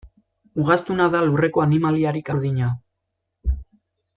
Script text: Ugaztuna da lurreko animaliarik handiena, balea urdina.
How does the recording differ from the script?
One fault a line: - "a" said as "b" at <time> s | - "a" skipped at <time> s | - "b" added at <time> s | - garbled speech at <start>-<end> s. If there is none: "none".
- "handiena balea" skipped at 2.3 s